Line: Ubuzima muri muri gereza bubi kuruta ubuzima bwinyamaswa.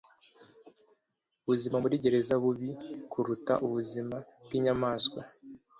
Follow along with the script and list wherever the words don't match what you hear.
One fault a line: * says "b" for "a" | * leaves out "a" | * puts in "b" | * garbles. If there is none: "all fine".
* leaves out "muri"